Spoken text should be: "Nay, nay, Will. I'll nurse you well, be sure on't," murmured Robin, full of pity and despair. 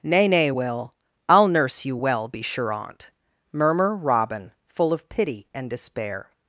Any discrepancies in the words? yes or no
yes